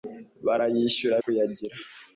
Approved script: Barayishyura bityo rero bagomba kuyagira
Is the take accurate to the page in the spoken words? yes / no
no